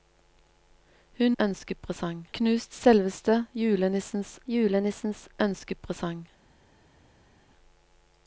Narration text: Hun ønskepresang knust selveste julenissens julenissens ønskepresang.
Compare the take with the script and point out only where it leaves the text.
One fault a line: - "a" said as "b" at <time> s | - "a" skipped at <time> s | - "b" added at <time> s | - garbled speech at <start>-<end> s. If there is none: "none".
none